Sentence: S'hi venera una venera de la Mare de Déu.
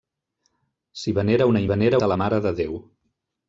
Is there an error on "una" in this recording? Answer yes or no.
no